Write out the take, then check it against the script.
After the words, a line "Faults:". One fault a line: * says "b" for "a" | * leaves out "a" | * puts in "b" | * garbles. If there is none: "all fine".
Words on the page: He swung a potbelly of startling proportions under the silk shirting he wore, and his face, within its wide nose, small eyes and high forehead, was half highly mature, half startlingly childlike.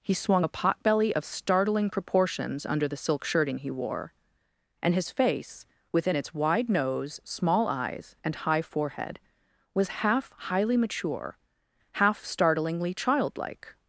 He swung a potbelly of startling proportions under the silk shirting he wore, and his face, within its wide nose, small eyes and high forehead, was half highly mature, half startlingly childlike.
Faults:
all fine